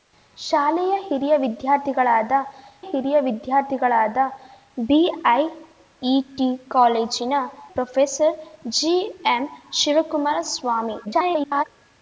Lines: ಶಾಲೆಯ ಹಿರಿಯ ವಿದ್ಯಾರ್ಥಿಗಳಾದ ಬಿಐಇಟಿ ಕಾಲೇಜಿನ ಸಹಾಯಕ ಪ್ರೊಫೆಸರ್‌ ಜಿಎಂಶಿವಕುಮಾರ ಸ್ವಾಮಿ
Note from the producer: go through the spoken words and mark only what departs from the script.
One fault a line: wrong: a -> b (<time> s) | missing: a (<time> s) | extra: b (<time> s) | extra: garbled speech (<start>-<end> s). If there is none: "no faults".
extra: ಹಿರಿಯ ವಿದ್ಯಾರ್ಥಿಗಳಾದ (2.8 s)
missing: ಸಹಾಯಕ (7.3 s)
extra: garbled speech (11.0-11.6 s)